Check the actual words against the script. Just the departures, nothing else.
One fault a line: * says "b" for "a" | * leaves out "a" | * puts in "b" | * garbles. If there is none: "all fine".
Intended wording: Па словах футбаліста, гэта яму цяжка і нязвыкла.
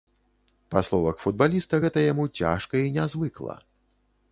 all fine